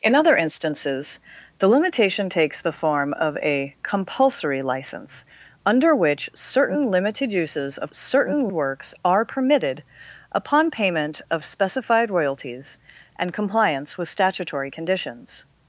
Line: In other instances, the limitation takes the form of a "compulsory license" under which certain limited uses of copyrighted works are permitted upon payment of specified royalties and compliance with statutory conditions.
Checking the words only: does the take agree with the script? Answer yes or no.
no